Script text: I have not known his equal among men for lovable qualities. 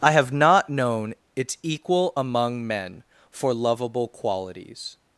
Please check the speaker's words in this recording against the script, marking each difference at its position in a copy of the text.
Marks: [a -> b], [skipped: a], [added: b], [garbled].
I have not known [his -> its] equal among men for lovable qualities.